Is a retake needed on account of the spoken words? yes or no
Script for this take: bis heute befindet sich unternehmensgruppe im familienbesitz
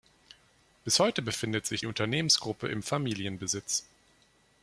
no